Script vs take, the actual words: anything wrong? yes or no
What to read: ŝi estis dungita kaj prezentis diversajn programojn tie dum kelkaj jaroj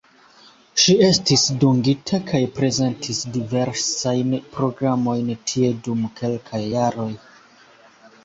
no